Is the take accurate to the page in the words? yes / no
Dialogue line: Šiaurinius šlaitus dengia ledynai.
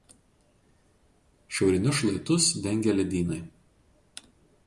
yes